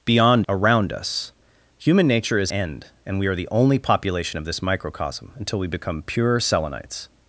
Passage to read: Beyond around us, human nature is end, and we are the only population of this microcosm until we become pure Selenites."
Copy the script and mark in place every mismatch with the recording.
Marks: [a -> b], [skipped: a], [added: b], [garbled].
Beyond around us, human nature is end, and we are the only population of this microcosm until we become pure Selenites."